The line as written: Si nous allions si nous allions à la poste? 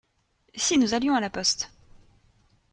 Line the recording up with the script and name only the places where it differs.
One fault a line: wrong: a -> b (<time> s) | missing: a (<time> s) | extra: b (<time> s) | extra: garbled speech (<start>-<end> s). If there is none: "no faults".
missing: si nous allions (1.1 s)